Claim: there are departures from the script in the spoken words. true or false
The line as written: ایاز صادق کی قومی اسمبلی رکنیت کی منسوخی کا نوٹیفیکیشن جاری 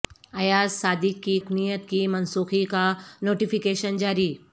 true